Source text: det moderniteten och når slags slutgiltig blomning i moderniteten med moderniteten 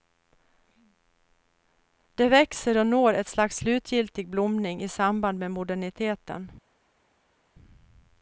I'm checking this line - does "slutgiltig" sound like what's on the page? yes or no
yes